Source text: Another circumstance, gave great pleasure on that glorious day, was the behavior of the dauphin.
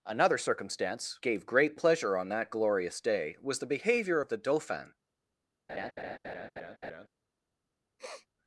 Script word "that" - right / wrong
right